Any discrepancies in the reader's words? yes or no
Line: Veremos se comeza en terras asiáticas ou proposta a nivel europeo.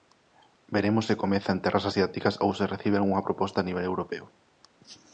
yes